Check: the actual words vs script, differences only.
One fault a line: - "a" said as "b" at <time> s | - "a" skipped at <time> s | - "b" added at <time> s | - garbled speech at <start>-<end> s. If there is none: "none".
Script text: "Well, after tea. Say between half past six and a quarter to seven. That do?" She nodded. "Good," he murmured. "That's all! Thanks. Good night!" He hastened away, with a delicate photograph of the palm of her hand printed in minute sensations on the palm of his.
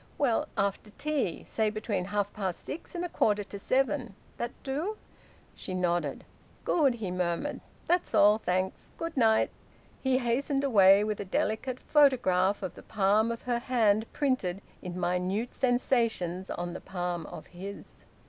none